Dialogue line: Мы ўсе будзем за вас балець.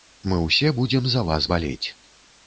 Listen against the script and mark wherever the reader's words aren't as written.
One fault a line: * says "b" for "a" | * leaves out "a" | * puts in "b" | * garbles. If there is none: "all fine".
all fine